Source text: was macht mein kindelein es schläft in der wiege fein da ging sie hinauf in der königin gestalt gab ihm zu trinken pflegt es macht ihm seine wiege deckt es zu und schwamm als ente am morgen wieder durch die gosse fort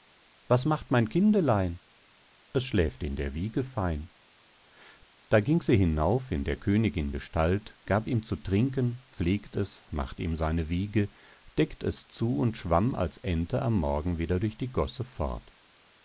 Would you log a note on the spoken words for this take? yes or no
no